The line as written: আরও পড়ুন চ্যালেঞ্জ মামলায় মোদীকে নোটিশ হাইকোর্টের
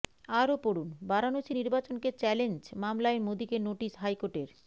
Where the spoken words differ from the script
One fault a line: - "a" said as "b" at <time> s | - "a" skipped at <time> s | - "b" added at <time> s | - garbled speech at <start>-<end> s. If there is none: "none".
- "বারাণসী নির্বাচনকে" added at 1.0 s